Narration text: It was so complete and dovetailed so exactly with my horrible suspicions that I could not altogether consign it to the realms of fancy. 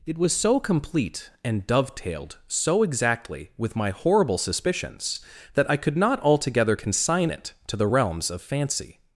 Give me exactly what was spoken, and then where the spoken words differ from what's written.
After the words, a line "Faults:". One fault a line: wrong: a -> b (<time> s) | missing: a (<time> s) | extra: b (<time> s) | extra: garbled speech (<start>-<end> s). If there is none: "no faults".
It was so complete and dovetailed so exactly with my horrible suspicions that I could not altogether consign it to the realms of fancy.
Faults:
no faults